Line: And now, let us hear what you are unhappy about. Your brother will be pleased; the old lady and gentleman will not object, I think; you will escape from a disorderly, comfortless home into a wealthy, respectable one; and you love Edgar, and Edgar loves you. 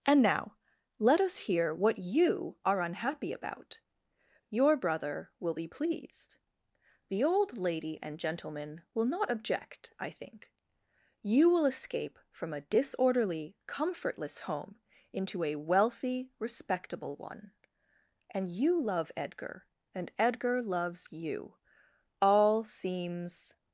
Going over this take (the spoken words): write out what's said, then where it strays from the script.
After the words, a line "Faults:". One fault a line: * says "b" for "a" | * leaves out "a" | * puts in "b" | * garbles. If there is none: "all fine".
And now, let us hear what you are unhappy about. Your brother will be pleased; the old lady and gentleman will not object, I think; you will escape from a disorderly, comfortless home into a wealthy, respectable one; and you love Edgar, and Edgar loves you. All seems
Faults:
* puts in "All seems"